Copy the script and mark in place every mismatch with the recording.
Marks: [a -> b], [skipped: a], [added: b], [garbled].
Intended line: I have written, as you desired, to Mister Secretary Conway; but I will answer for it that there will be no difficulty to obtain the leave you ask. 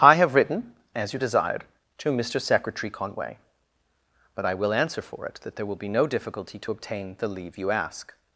I have written, as you desired, to Mister Secretary Conway; but I will answer for it that there will be no difficulty to obtain the leave you ask.